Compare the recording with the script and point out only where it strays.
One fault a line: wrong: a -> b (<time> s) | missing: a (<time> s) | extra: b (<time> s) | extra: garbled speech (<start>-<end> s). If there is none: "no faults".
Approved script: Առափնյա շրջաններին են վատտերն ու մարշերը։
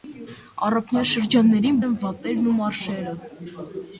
no faults